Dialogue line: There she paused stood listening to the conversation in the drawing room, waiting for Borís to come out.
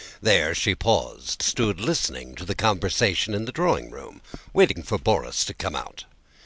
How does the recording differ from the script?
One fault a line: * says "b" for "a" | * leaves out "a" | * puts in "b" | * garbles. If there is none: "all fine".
all fine